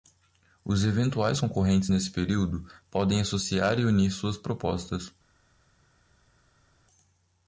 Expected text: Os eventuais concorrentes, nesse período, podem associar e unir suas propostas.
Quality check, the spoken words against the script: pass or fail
pass